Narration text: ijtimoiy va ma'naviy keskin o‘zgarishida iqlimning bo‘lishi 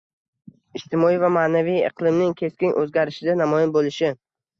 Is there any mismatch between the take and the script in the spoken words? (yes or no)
yes